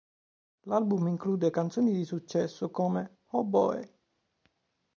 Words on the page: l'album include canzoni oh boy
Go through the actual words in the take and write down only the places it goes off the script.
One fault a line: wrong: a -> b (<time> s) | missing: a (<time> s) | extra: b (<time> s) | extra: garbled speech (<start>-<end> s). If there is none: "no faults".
extra: di successo come (1.9 s)